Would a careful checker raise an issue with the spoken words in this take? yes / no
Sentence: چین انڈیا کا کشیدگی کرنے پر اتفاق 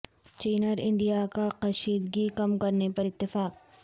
yes